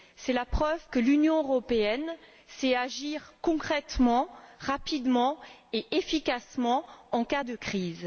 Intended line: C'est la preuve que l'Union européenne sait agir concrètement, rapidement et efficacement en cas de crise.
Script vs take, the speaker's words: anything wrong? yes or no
no